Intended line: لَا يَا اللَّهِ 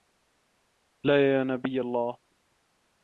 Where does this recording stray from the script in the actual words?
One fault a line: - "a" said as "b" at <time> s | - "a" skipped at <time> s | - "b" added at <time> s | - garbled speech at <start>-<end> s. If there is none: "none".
- "نَبِيَّ" added at 1.4 s